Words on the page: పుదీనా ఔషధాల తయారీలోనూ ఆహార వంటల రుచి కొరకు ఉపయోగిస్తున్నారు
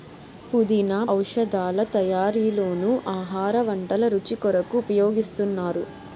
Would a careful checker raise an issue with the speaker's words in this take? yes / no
no